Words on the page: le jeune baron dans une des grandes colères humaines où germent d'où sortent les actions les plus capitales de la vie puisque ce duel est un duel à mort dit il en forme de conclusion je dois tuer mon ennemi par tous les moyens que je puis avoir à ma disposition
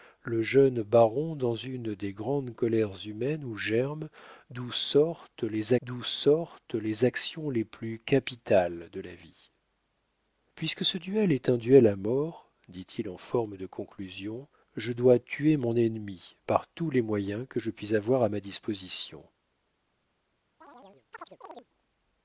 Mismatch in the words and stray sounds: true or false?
true